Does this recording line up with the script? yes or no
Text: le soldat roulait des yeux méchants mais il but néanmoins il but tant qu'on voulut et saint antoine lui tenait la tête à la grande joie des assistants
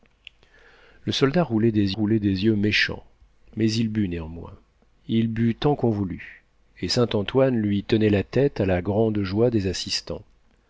no